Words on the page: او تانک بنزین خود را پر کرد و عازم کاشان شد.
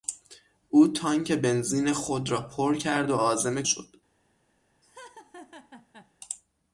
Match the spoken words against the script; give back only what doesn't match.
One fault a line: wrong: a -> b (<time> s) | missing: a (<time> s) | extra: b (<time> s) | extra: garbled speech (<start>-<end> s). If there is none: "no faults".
missing: کاشان (3.6 s)